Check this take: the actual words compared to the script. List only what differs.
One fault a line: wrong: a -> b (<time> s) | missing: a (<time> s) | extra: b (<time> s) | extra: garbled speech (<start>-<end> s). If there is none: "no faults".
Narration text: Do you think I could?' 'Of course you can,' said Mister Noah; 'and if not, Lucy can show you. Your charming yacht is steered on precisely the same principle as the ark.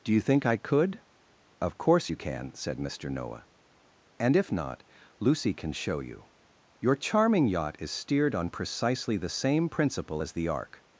no faults